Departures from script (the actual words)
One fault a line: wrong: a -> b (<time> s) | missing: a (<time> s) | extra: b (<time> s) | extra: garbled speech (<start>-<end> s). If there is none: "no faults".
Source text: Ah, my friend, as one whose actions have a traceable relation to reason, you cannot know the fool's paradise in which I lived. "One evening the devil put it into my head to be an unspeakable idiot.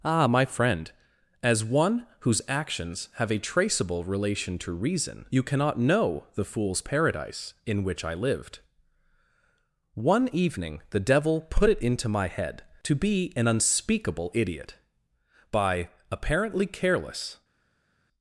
extra: By apparently careless (15.5 s)